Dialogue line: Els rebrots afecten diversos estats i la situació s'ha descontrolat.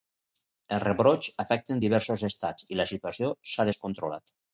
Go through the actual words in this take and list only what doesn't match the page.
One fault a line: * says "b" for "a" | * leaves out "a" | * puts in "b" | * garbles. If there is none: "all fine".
all fine